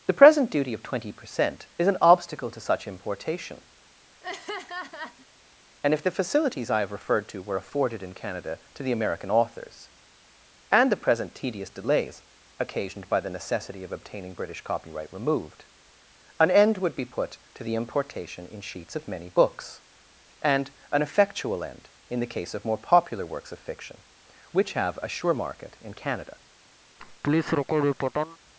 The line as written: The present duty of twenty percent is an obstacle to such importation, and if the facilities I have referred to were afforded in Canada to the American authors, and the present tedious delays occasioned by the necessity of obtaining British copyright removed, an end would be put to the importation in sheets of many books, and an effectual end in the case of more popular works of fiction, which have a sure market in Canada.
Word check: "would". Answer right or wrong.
right